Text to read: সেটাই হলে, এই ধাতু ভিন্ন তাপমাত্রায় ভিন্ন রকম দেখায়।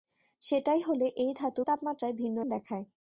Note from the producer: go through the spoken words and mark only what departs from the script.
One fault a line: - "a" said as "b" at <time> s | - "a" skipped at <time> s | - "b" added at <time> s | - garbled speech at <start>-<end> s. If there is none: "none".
- "ভিন্ন" skipped at 1.6 s
- "রকম" skipped at 2.4 s